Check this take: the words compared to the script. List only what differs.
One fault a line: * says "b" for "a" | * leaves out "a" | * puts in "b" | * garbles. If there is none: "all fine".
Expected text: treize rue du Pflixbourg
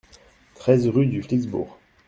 all fine